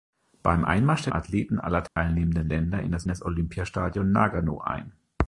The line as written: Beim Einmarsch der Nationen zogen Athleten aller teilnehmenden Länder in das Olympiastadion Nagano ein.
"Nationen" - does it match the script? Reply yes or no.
no